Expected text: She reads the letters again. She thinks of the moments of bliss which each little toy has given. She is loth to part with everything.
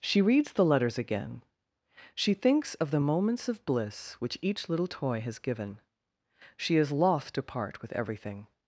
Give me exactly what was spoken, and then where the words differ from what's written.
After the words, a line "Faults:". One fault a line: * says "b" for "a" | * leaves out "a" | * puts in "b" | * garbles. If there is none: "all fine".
She reads the letters again. She thinks of the moments of bliss which each little toy has given. She is loth to part with everything.
Faults:
all fine